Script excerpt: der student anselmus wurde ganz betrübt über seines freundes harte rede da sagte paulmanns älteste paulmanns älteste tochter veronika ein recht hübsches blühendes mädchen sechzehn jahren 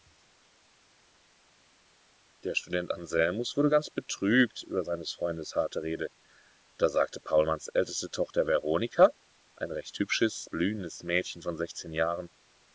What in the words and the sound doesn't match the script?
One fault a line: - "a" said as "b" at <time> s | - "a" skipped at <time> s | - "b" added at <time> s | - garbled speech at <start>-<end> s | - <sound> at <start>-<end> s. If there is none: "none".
- "paulmanns älteste" skipped at 8.1 s
- "von" added at 11.4 s